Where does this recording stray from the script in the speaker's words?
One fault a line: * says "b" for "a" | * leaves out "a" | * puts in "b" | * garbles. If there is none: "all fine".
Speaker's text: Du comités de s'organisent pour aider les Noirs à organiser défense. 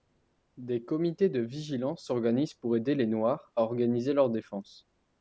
* says "Des" for "Du"
* puts in "vigilance"
* puts in "leur"